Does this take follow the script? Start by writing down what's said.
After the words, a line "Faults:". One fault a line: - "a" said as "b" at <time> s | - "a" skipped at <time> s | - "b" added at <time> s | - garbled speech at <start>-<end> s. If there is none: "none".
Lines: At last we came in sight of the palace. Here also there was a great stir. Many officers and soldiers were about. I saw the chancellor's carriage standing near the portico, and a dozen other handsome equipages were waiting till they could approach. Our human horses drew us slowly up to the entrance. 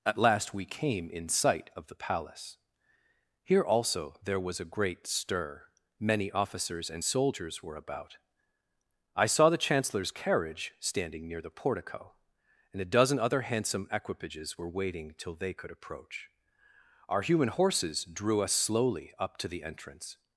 At last we came in sight of the palace. Here also there was a great stir. Many officers and soldiers were about. I saw the chancellor's carriage standing near the portico, and a dozen other handsome equipages were waiting till they could approach. Our human horses drew us slowly up to the entrance.
Faults:
none